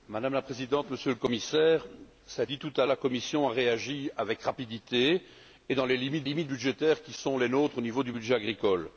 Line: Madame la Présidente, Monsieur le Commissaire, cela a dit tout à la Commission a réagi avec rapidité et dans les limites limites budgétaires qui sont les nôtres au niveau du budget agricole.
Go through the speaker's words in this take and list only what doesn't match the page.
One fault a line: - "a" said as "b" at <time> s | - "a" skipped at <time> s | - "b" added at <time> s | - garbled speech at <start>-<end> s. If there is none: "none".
none